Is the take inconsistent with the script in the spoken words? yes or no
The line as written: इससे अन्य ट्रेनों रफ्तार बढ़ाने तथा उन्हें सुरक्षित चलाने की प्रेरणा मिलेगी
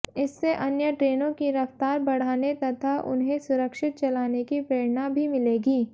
yes